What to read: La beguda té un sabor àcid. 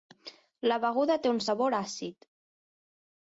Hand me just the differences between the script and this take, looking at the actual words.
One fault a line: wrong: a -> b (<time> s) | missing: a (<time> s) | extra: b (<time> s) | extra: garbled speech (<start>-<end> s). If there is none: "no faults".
no faults